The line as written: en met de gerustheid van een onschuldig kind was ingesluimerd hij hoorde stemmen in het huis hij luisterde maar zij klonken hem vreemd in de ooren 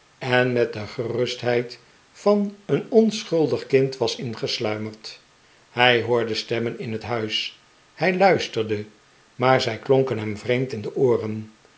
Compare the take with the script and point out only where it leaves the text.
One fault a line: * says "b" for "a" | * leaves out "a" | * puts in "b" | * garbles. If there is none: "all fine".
all fine